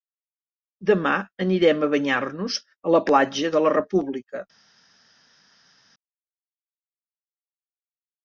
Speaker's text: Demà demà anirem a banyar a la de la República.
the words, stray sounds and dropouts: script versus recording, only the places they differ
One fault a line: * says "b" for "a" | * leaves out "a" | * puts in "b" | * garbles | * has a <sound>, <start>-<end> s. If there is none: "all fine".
* leaves out "demà"
* puts in "nos"
* puts in "platja"